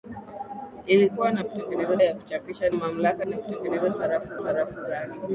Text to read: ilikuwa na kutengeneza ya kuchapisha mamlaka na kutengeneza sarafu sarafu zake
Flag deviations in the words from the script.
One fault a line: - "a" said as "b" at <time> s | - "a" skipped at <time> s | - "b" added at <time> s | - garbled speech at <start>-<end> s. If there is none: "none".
none